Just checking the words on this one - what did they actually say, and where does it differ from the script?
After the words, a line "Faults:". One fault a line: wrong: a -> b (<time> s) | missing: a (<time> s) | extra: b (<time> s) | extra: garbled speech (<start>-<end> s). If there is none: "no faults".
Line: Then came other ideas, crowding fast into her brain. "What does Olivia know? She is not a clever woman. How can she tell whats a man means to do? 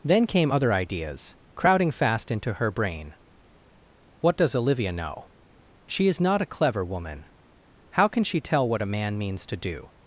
Then came other ideas, crowding fast into her brain. "What does Olivia know? She is not a clever woman. How can she tell what a man means to do?
Faults:
wrong: whats -> what (8.7 s)